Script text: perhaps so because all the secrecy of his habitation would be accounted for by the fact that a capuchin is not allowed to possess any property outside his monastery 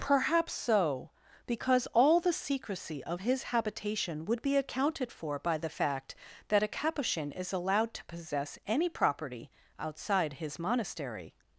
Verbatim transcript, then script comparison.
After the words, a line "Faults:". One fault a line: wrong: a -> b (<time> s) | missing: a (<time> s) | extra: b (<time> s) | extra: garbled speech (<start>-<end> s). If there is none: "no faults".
perhaps so because all the secrecy of his habitation would be accounted for by the fact that a capuchin is allowed to possess any property outside his monastery
Faults:
missing: not (7.5 s)